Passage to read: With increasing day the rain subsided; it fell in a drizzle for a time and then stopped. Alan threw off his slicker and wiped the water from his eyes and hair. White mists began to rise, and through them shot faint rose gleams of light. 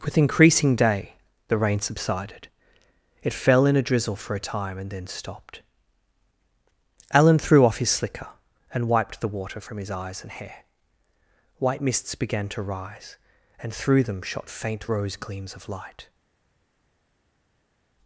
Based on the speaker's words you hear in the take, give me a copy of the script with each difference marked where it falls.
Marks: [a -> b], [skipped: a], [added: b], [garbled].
With increasing day the rain subsided; it fell in a drizzle for a time and then stopped. Alan threw off his slicker and wiped the water from his eyes and hair. White mists began to rise, and through them shot faint rose gleams of light.